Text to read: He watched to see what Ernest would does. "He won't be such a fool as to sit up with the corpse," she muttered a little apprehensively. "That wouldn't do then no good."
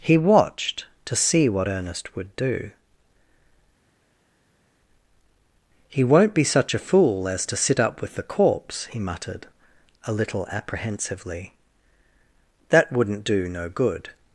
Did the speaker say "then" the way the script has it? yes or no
no